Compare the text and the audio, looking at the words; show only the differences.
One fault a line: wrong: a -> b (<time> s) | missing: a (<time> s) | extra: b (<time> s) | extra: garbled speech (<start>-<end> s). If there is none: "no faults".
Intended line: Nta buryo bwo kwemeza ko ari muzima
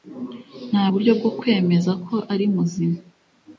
no faults